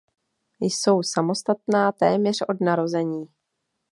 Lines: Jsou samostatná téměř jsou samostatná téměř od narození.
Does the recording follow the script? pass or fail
fail